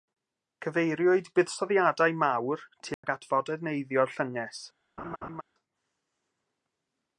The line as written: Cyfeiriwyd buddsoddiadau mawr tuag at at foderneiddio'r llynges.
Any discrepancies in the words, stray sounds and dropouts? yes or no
yes